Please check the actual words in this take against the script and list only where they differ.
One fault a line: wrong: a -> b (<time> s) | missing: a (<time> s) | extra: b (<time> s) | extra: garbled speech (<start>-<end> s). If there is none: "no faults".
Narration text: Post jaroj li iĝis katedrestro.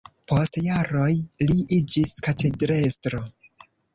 no faults